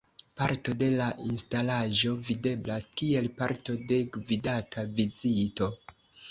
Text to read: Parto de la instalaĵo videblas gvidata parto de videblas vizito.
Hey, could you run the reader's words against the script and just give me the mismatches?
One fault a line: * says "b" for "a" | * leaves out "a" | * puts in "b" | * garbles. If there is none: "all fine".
* says "kiel" for "gvidata"
* says "gvidata" for "videblas"